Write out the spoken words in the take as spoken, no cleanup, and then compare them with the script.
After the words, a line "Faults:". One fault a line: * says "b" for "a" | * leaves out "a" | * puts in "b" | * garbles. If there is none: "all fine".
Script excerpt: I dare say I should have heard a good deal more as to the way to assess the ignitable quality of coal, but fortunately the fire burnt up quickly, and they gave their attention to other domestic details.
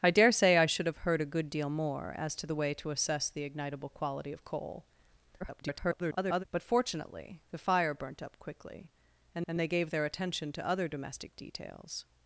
I dare say I should have heard a good deal more as to the way to assess the ignitable quality of coal, [garbled] but fortunately the fire burnt up quickly, and and they gave their attention to other domestic details.
Faults:
* garbles
* puts in "and"